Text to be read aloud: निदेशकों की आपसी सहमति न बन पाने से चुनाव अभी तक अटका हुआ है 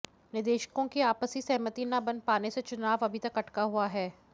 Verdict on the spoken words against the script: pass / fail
pass